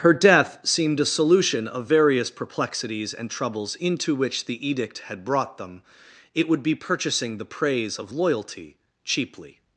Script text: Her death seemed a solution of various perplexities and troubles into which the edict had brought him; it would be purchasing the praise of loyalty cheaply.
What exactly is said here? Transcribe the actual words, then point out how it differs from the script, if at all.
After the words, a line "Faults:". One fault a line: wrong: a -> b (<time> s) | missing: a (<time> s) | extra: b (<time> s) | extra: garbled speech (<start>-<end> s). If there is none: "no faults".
Her death seemed a solution of various perplexities and troubles into which the edict had brought them; it would be purchasing the praise of loyalty cheaply.
Faults:
wrong: him -> them (5.6 s)